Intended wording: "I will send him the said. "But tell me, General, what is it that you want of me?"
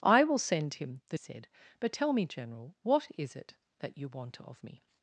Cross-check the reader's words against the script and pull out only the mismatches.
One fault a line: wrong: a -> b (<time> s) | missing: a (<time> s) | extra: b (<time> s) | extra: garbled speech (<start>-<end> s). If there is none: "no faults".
no faults